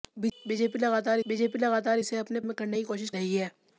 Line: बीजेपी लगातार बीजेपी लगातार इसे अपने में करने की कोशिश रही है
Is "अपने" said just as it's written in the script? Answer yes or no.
yes